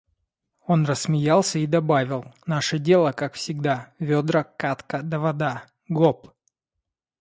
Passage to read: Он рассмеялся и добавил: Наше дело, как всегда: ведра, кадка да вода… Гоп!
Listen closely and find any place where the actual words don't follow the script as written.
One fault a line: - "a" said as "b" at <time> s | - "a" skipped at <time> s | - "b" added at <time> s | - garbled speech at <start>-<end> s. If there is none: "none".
none